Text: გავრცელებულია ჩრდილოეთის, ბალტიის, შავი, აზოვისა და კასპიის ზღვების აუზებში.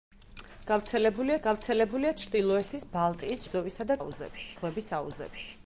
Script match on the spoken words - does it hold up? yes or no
no